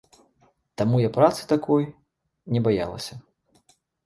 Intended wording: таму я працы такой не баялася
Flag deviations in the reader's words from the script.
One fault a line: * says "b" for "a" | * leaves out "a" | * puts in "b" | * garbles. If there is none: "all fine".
all fine